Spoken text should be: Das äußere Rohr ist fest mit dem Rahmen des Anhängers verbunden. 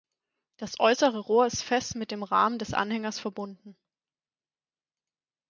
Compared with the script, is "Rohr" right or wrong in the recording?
right